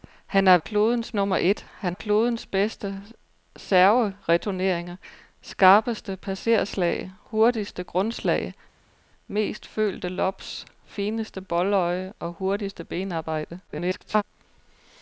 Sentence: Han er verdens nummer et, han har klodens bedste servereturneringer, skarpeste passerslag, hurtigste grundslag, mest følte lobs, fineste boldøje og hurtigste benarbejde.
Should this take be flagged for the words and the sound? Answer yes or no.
yes